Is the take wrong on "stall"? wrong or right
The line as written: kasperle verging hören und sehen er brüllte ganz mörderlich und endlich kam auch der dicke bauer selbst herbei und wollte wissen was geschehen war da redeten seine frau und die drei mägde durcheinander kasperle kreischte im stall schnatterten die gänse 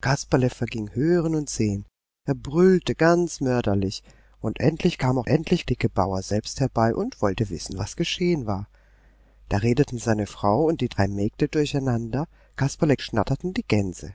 wrong